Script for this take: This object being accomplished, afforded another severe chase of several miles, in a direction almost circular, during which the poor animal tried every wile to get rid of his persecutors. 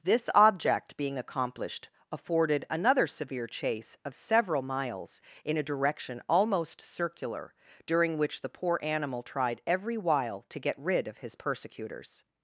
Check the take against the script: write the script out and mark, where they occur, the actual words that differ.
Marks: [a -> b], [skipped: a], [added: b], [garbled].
This object being accomplished, afforded another severe chase of several miles, in a direction almost circular, during which the poor animal tried every wile to get rid of his persecutors.